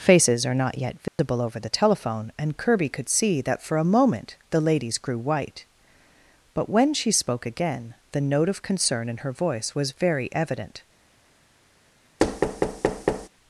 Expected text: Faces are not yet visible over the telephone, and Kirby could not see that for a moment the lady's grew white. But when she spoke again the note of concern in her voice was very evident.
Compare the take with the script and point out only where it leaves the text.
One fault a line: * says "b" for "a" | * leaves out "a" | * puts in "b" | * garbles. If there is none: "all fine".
* leaves out "not"